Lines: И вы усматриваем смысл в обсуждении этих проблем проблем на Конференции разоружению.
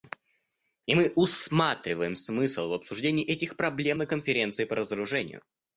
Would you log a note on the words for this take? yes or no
yes